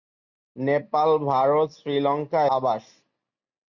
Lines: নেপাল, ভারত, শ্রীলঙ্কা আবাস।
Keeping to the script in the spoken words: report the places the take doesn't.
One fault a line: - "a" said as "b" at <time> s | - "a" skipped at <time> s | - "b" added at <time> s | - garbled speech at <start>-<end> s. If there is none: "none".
none